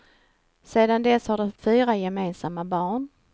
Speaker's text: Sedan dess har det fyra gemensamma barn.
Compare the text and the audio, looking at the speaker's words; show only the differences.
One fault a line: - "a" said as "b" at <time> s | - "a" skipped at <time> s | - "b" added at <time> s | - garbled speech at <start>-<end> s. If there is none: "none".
none